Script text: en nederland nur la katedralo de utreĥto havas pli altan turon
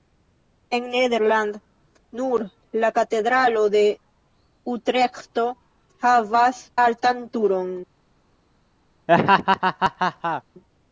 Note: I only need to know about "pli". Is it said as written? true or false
false